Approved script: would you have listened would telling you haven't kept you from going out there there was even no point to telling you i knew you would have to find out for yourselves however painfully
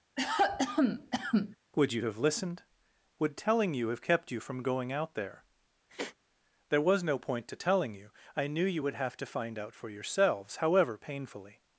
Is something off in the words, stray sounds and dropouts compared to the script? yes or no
yes